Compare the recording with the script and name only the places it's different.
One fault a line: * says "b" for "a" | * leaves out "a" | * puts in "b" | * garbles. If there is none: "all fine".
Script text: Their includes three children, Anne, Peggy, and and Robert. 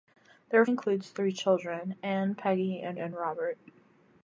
all fine